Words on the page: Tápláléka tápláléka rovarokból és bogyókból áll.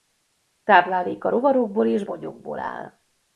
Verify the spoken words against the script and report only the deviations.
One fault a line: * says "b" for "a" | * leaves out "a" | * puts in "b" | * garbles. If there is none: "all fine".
* leaves out "tápláléka"